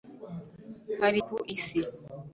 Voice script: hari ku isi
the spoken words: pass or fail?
pass